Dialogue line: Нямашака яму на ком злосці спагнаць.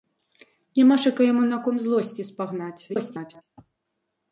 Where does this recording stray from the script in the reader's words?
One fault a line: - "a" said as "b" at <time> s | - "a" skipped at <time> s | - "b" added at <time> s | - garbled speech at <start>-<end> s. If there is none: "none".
- garbled speech at 2.9-3.4 s